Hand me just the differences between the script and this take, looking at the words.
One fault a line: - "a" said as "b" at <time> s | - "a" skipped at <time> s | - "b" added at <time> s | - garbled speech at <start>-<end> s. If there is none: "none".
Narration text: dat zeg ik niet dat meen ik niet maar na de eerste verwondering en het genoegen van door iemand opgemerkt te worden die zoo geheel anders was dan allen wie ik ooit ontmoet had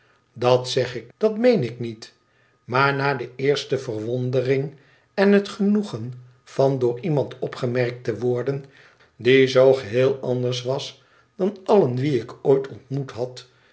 - "niet" skipped at 1.1 s